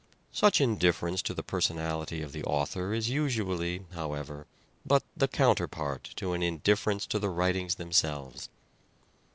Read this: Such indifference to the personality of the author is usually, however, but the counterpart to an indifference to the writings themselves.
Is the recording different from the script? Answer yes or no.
no